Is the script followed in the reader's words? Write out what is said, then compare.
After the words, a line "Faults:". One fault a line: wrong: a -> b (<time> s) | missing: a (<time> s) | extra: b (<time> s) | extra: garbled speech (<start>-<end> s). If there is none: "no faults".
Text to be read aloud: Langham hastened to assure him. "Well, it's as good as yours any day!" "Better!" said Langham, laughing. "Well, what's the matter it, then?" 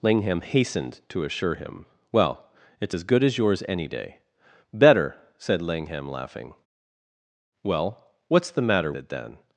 Langham hastened to assure him. "Well, it's as good as yours any day!" "Better!" said Langham, laughing. "Well, what's the matter it, then?"
Faults:
no faults